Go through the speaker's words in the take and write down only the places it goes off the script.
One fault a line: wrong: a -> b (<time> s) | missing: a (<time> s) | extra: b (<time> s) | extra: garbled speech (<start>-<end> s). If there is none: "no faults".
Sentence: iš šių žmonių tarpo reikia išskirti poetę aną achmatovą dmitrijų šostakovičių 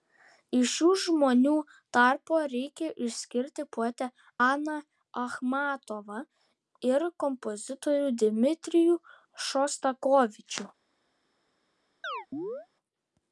extra: ir kompozitorių (6.9 s)